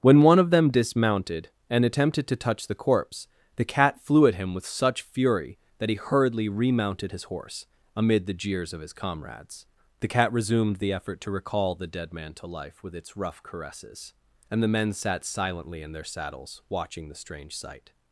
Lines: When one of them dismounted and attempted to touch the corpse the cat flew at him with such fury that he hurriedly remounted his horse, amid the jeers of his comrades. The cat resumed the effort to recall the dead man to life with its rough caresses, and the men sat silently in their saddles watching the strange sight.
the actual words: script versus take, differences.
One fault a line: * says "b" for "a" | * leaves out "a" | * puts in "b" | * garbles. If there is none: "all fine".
all fine